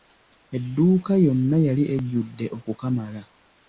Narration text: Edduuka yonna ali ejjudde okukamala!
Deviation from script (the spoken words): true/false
true